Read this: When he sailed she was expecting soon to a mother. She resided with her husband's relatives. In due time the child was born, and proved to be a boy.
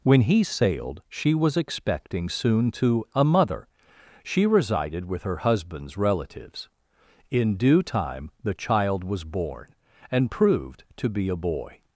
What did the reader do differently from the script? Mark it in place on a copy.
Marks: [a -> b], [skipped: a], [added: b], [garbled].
When he sailed she was expecting soon to a mother. She resided with her husband's relatives. In due time the child was born, and proved to be a boy.